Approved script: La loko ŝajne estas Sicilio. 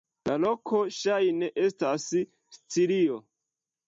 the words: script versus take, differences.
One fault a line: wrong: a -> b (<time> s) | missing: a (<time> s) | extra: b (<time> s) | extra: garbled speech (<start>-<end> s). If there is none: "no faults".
no faults